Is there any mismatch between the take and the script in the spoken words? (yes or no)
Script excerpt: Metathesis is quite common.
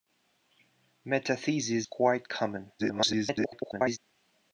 yes